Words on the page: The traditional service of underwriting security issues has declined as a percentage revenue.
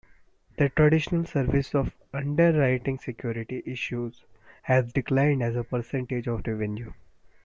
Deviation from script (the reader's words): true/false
true